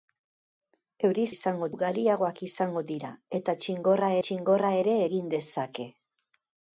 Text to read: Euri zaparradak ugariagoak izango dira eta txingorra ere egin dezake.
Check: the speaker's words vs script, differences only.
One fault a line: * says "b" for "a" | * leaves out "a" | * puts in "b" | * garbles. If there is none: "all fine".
* says "izango" for "zaparradak"
* puts in "txingorra"